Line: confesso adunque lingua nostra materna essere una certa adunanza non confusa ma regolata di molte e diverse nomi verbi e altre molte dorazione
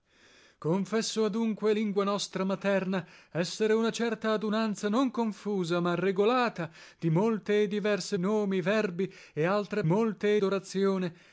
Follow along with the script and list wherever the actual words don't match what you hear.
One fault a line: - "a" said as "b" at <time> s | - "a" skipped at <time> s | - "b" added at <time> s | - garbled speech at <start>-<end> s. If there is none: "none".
none